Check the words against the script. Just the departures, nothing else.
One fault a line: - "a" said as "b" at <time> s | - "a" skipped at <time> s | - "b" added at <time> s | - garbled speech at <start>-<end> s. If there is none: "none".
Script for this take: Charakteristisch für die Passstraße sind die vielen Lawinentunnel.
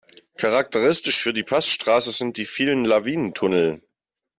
none